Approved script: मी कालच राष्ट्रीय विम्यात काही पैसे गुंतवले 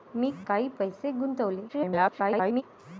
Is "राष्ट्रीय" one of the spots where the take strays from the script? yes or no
yes